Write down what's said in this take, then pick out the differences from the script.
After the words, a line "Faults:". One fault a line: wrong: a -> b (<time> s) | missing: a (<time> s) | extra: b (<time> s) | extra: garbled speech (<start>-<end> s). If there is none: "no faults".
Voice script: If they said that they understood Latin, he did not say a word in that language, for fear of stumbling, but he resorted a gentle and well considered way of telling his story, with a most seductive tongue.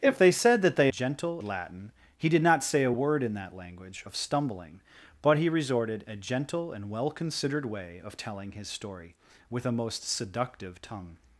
If they said that they gentle Latin, he did not say a word in that language, of stumbling, but he resorted a gentle and well considered way of telling his story, with a most seductive tongue.
Faults:
wrong: understood -> gentle (0.9 s)
missing: for fear (4.0 s)